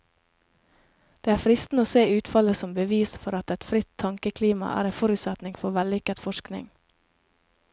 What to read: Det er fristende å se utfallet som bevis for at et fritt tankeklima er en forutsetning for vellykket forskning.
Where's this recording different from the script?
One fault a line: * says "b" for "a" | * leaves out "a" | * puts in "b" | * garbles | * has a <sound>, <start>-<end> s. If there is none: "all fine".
all fine